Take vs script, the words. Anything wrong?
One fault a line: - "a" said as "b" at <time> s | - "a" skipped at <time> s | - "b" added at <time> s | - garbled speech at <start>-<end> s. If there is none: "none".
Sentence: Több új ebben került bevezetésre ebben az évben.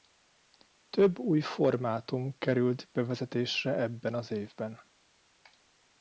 - "ebben" said as "formátum" at 1.4 s